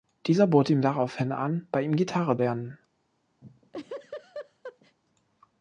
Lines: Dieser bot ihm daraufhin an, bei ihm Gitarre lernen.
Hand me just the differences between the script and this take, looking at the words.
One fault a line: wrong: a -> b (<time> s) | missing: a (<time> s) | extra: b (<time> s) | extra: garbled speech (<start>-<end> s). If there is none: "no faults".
no faults